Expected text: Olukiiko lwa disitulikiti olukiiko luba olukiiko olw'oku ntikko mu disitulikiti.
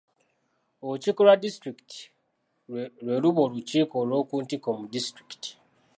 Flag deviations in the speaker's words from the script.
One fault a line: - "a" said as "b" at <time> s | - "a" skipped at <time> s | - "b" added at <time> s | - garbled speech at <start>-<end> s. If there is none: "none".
- "olukiiko" said as "lwe" at 3.0 s